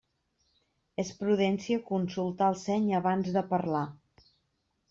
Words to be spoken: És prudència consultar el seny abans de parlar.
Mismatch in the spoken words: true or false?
false